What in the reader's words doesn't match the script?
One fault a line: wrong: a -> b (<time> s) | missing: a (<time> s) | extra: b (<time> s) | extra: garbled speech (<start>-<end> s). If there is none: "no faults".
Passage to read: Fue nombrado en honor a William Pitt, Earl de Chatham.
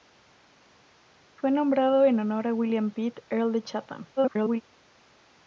extra: garbled speech (4.2-4.6 s)